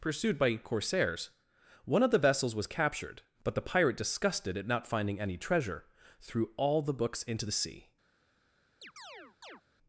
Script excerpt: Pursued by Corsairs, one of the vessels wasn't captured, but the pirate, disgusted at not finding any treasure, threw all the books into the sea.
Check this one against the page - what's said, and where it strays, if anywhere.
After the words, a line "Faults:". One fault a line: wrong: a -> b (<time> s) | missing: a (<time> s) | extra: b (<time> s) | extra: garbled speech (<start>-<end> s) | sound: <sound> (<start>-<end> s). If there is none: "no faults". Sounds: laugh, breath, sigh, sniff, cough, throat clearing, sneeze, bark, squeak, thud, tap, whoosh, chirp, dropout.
Pursued by Corsairs, one of the vessels was captured, but the pirate, disgusted at not finding any treasure, threw all the books into the sea.
Faults:
wrong: wasn't -> was (2.5 s)
sound: chirp (8.8-9.6 s)